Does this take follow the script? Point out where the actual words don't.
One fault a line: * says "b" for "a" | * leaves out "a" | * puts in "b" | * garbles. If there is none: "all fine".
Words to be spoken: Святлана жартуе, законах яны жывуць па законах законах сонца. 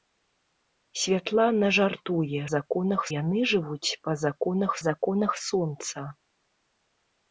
all fine